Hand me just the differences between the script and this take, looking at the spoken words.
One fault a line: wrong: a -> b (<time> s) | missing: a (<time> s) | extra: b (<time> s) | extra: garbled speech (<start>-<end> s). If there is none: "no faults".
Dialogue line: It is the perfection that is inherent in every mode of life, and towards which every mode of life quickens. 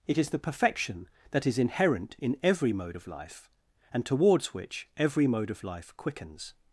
no faults